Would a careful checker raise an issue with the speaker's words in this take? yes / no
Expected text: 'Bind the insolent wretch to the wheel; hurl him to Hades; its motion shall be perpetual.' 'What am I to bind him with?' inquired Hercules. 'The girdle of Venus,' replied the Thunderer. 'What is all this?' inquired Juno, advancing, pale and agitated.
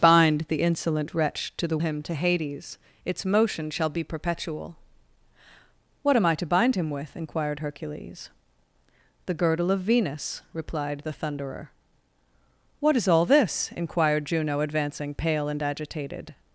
yes